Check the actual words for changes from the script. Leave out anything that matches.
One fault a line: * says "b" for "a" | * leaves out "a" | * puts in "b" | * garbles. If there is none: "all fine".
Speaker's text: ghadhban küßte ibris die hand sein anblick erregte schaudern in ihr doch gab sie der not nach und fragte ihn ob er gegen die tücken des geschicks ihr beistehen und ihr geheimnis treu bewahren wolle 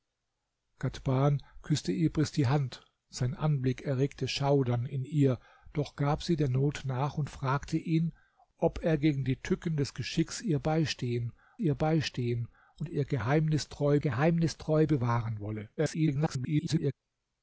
* puts in "ihr beistehen"
* puts in "geheimnis treu"
* garbles